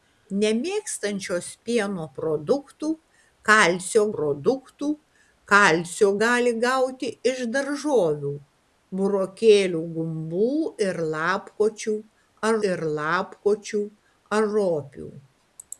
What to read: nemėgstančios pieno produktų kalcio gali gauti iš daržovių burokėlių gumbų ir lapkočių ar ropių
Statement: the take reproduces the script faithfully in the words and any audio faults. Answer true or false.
false